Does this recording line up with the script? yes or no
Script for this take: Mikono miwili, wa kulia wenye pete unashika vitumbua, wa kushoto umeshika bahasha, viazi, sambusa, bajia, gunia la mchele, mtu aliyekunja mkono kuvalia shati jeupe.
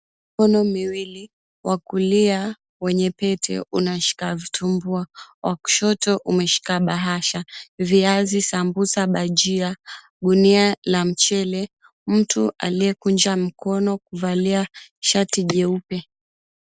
yes